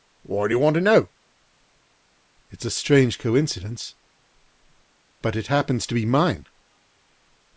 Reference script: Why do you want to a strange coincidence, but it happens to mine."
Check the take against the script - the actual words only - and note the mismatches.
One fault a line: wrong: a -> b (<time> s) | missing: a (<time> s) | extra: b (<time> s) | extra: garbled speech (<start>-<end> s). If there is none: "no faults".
extra: know It's (0.8 s)
extra: be (5.9 s)